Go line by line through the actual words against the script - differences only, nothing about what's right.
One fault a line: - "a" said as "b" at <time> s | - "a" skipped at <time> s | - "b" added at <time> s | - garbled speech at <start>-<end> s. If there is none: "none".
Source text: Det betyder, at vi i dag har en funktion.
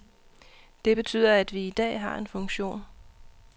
none